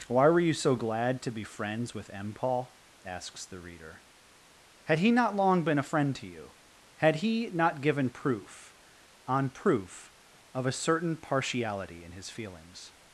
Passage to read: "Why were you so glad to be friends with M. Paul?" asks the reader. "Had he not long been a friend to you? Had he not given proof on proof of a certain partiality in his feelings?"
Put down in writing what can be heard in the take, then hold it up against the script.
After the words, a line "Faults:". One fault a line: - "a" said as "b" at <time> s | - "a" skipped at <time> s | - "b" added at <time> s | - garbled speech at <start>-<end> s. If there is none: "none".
"Why were you so glad to be friends with M. Paul?" asks the reader. "Had he not long been a friend to you? Had he not given proof on proof of a certain partiality in his feelings?"
Faults:
none